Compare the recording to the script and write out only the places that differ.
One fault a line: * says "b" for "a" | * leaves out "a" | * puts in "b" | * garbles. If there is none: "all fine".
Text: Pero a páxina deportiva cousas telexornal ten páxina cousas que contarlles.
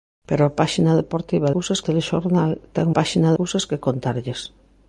all fine